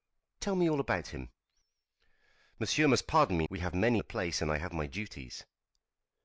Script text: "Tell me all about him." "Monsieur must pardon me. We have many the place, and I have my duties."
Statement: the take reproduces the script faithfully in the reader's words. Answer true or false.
true